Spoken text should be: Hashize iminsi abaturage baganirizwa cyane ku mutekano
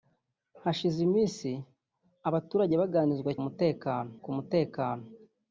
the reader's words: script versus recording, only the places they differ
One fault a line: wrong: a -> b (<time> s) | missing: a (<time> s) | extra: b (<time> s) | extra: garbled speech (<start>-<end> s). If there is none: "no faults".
wrong: cyane -> mutekano (3.4 s)